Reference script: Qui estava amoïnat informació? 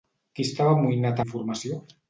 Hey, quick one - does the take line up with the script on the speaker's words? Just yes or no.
yes